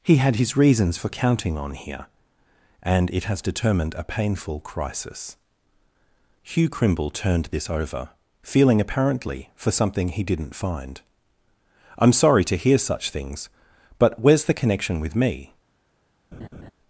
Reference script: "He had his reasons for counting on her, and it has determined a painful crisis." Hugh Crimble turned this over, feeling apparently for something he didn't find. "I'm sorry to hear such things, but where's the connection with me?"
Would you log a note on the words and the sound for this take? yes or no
yes